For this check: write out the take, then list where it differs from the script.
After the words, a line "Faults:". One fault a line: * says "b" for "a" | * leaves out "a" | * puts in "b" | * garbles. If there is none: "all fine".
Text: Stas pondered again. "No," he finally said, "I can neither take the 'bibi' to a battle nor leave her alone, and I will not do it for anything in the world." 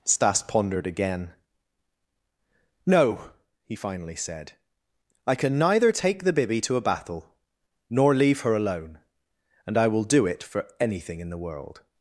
Stas pondered again. "No," he finally said, "I can neither take the 'bibi' to a battle nor leave her alone, and I will do it for anything in the world."
Faults:
* leaves out "not"